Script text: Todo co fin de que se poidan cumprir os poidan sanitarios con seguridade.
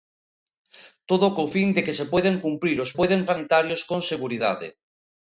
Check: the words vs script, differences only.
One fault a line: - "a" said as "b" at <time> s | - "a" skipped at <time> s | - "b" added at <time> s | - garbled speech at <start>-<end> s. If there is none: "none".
none